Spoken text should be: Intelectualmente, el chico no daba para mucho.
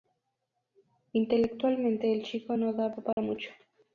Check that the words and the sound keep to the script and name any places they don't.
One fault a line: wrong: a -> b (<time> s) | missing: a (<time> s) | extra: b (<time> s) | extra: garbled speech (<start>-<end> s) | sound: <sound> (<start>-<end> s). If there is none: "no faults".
sound: dropout (3.1-3.2 s)